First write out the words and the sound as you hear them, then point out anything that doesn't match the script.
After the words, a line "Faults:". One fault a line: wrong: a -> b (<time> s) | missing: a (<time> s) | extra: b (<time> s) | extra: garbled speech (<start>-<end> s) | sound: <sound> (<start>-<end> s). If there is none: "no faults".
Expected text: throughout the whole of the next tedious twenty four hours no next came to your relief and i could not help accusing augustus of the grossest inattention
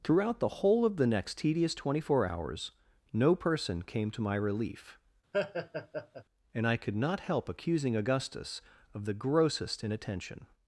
throughout the whole of the next tedious twenty four hours no person came to my relief and i could not help accusing augustus of the grossest inattention
Faults:
wrong: next -> person (3.4 s)
wrong: your -> my (4.2 s)
sound: laugh (5.3-6.2 s)